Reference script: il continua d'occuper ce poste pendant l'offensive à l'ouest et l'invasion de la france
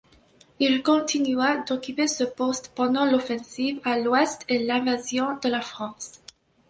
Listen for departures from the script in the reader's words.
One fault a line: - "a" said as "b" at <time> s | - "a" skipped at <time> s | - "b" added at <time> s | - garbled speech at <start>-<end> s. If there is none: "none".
none